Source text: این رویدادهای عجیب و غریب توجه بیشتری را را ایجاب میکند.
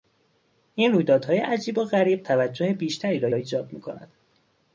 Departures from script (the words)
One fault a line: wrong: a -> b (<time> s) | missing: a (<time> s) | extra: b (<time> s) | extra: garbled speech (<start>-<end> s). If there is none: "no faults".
no faults